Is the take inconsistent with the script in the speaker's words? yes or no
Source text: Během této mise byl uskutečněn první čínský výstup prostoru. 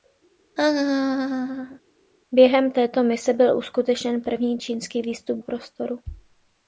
no